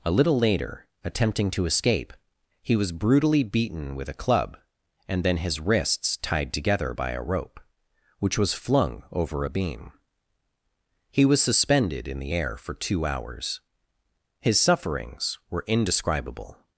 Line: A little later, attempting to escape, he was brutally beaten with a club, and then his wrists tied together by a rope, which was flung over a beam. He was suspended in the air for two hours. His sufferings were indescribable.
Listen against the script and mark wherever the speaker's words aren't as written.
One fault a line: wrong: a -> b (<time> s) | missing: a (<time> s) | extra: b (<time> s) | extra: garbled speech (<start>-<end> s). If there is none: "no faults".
no faults